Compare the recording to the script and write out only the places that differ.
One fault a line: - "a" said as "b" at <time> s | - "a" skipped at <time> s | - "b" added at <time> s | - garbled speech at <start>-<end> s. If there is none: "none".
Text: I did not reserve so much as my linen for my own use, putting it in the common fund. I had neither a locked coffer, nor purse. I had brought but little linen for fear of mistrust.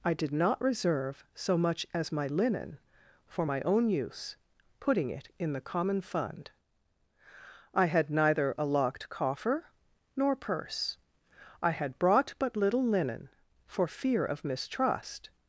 none